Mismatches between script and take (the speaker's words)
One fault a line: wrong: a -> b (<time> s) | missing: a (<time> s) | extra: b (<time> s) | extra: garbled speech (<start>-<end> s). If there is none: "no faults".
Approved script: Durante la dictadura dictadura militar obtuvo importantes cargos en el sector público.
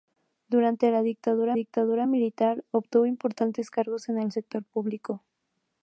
no faults